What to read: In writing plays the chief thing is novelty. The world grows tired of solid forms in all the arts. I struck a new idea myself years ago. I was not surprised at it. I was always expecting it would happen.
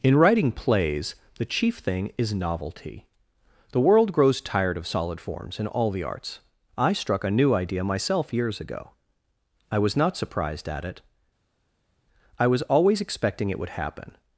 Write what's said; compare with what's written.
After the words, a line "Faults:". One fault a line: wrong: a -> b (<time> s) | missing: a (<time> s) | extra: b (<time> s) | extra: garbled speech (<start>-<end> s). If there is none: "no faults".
In writing plays the chief thing is novelty. The world grows tired of solid forms in all the arts. I struck a new idea myself years ago. I was not surprised at it. I was always expecting it would happen.
Faults:
no faults